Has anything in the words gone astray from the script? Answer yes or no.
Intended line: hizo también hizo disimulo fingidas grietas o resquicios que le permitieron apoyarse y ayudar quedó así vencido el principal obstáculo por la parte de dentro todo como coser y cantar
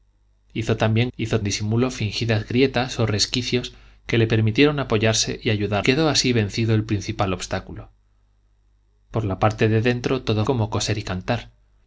no